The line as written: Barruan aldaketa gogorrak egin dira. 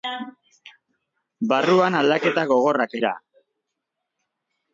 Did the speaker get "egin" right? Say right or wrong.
wrong